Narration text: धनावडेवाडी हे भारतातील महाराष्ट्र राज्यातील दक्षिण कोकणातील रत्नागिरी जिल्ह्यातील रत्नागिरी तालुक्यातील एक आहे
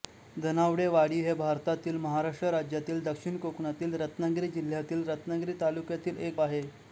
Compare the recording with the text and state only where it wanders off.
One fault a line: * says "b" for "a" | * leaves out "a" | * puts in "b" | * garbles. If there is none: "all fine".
all fine